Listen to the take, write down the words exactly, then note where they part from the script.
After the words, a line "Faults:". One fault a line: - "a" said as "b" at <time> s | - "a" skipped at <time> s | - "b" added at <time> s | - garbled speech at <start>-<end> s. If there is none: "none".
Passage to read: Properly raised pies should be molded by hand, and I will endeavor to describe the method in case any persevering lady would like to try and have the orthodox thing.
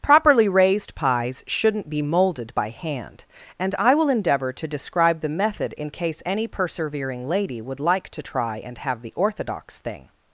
Properly raised pies shouldn't be molded by hand, and I will endeavor to describe the method in case any persevering lady would like to try and have the orthodox thing.
Faults:
- "should" said as "shouldn't" at 1.4 s